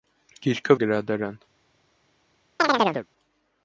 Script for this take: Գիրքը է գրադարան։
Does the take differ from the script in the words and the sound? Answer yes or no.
yes